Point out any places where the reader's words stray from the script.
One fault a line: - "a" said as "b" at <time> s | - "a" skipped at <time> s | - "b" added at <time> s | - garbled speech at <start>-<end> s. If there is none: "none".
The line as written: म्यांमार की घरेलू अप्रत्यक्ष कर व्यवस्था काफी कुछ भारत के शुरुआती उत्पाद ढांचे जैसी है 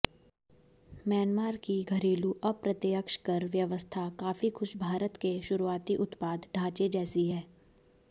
none